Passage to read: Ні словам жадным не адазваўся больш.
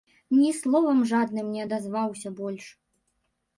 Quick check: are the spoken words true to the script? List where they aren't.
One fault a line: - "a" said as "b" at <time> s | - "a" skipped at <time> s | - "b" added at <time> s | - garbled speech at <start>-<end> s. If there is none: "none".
none